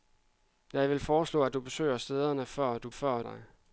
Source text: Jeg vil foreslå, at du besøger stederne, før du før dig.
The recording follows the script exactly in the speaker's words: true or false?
true